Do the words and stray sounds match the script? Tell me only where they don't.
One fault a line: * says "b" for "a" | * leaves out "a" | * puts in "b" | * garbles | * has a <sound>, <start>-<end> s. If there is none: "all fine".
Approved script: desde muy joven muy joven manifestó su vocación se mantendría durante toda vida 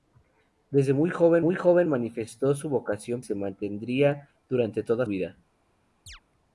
* has a chirp, 6.1-6.2 s